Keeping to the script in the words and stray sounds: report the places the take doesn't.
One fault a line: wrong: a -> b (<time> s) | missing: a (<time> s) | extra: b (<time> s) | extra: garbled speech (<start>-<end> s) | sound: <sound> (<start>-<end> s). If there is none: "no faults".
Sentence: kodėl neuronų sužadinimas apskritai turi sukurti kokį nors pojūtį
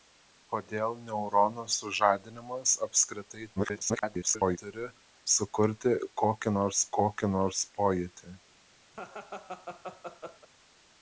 extra: garbled speech (3.6-4.6 s)
extra: kokį nors (7.0 s)
sound: laugh (8.9-10.5 s)